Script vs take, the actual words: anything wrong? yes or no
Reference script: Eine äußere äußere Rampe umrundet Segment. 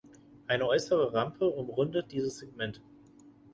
yes